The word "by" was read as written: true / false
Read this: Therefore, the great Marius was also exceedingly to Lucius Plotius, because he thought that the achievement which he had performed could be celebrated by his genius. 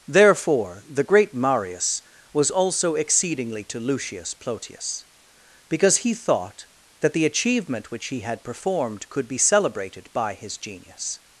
true